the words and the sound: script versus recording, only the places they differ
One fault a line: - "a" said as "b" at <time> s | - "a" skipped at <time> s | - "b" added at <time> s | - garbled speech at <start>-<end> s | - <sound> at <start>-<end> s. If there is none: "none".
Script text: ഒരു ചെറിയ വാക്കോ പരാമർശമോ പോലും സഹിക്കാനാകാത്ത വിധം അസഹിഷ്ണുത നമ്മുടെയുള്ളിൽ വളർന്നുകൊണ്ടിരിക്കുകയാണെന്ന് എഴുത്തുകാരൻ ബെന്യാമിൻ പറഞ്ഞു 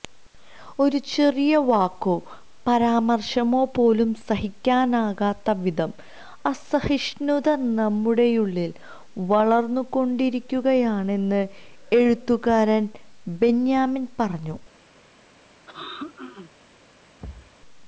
- throat clearing at 15.7-16.5 s
- thud at 17.2-17.6 s